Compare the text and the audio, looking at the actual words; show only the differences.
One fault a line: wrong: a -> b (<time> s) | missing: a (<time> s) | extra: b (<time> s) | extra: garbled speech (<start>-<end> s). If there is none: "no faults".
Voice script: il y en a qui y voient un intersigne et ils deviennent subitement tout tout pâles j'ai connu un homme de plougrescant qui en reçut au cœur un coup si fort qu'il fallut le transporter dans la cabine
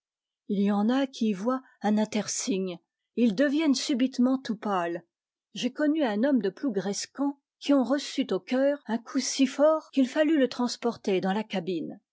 missing: tout (4.6 s)